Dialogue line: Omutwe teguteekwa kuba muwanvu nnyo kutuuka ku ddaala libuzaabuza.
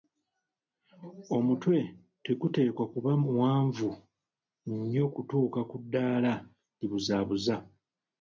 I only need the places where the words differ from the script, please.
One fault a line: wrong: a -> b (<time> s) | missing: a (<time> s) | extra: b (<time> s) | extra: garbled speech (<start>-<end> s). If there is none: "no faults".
no faults